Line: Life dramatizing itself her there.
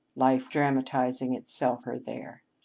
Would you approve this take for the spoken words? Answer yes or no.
yes